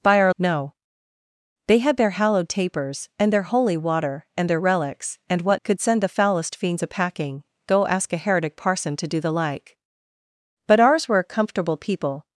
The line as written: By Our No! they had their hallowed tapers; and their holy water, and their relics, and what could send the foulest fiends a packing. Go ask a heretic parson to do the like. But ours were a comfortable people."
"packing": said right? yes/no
yes